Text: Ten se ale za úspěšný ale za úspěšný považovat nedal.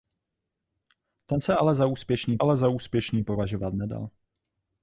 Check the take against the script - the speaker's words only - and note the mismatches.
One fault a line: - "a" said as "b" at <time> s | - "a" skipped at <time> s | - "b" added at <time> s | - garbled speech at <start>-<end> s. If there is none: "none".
none